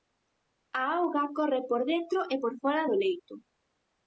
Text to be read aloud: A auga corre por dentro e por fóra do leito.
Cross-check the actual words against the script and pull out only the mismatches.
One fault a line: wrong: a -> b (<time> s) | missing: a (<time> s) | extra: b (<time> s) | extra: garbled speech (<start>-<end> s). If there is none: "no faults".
no faults